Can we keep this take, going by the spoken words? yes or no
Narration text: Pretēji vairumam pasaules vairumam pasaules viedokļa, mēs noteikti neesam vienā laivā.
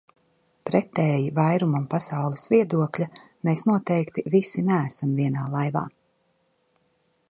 no